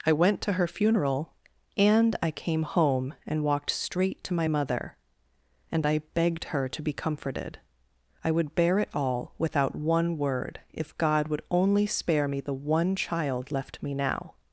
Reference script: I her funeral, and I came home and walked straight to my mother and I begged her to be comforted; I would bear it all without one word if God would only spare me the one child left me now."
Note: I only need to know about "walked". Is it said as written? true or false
true